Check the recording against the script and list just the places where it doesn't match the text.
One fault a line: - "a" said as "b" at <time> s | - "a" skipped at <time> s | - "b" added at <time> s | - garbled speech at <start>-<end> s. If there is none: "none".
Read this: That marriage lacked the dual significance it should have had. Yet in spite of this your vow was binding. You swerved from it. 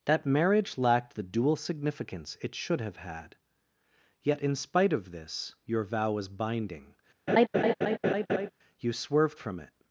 none